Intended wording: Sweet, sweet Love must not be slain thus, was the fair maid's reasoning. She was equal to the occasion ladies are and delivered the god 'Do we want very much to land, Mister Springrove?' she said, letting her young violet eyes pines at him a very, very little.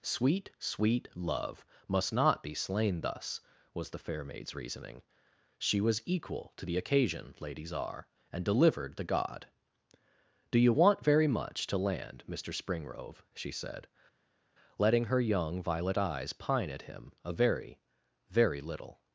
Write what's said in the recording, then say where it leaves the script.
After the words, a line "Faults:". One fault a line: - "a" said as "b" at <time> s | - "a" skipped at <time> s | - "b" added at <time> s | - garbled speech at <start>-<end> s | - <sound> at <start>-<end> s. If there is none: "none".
Sweet, sweet Love must not be slain thus, was the fair maid's reasoning. She was equal to the occasion ladies are and delivered the god 'Do you want very much to land, Mister Springrove?' she said, letting her young violet eyes pine at him a very, very little.
Faults:
- "we" said as "you" at 10.6 s
- "pines" said as "pine" at 16.3 s